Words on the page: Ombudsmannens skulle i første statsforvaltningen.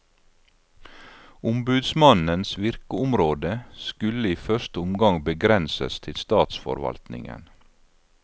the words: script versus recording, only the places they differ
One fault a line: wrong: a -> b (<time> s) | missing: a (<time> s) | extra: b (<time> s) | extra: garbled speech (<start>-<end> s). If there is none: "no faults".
extra: virkeområde (2.6 s)
extra: omgang begrenses til (4.8 s)